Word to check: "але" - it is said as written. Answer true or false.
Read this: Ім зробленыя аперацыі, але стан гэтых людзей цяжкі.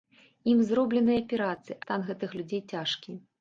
false